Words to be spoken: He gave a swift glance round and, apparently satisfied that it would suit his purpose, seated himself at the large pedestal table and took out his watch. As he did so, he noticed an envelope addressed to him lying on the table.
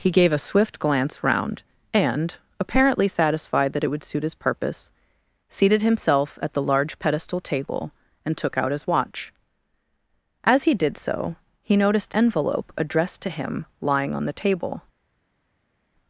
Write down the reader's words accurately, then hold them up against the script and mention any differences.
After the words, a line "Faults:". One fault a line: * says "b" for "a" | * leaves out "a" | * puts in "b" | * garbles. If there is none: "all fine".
He gave a swift glance round and, apparently satisfied that it would suit his purpose, seated himself at the large pedestal table and took out his watch. As he did so, he noticed envelope addressed to him lying on the table.
Faults:
* leaves out "an"